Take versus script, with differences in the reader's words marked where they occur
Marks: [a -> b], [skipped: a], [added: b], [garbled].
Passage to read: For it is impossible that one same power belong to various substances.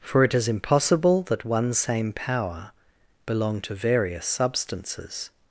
For it is impossible that one same power belong to various substances.